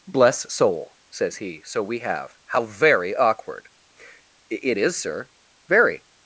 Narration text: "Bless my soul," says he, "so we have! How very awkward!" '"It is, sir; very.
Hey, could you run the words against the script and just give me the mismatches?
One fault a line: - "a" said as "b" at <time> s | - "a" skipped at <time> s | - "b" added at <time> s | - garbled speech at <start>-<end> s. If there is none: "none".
- "my" skipped at 0.5 s